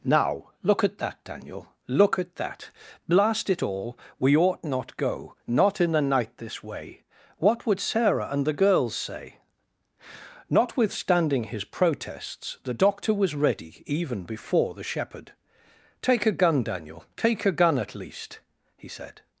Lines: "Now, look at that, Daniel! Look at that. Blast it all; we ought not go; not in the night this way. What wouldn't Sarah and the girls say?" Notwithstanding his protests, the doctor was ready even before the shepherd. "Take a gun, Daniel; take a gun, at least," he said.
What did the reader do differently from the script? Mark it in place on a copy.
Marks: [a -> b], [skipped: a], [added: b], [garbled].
"Now, look at that, Daniel! Look at that. Blast it all; we ought not go; not in the night this way. What [wouldn't -> would] Sarah and the girls say?" Notwithstanding his protests, the doctor was ready even before the shepherd. "Take a gun, Daniel; take a gun, at least," he said.